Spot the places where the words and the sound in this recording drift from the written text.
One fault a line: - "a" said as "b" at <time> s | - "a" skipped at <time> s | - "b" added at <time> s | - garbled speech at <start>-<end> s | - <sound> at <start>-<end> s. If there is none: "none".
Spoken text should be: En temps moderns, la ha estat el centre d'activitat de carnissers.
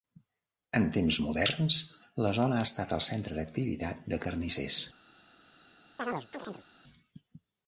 - "zona" added at 2.4 s
- chirp at 6.0-6.7 s